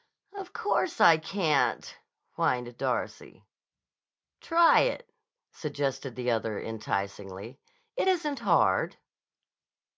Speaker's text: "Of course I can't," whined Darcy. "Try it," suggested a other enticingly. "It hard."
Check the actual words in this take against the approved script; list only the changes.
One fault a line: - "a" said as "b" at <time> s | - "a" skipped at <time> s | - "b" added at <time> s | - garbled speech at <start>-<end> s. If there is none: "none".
- "a" said as "the" at 6.2 s
- "isn't" added at 8.1 s